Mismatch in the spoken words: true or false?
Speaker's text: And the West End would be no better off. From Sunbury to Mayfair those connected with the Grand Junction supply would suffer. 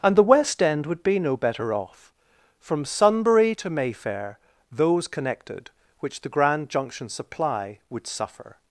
true